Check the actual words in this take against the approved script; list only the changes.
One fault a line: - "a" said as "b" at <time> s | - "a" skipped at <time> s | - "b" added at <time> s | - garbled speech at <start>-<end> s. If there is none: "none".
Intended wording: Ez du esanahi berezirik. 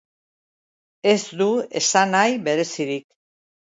none